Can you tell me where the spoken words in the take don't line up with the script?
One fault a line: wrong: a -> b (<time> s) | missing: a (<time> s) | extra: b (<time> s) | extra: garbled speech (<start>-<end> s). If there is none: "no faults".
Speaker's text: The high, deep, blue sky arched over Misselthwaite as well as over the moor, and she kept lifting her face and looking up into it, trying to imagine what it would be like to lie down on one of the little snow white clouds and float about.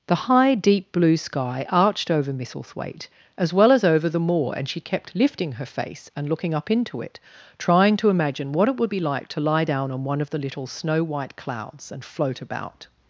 no faults